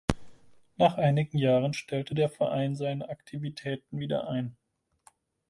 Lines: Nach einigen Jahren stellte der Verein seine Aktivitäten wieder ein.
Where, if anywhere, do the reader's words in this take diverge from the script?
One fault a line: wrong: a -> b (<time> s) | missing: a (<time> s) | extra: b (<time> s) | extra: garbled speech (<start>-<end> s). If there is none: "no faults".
no faults